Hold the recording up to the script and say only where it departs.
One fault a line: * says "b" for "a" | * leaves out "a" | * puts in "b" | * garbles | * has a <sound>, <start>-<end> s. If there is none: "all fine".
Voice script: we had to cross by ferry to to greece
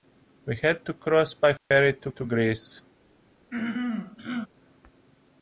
* has a dropout, 1.6-1.7 s
* has a throat clearing, 3.5-4.5 s